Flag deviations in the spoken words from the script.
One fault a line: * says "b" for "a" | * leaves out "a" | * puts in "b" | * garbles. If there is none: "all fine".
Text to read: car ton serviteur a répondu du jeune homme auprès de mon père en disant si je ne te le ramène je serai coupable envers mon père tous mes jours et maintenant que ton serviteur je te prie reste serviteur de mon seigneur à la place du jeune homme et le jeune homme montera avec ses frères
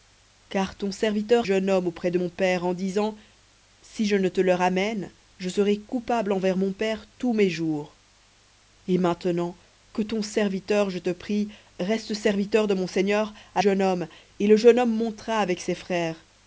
* leaves out "a répondu du"
* leaves out "la place du"